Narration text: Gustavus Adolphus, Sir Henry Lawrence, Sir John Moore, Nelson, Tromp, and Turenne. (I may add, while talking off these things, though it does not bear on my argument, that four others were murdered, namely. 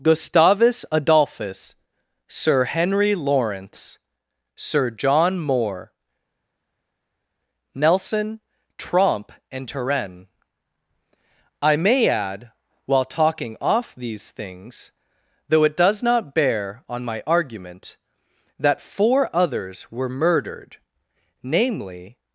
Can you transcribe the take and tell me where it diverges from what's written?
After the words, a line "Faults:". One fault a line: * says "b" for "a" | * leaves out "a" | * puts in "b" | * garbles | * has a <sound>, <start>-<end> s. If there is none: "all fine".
Gustavus Adolphus, Sir Henry Lawrence, Sir John Moore, Nelson, Tromp, and Turenne. (I may add, while talking off these things, though it does not bear on my argument, that four others were murdered, namely.
Faults:
all fine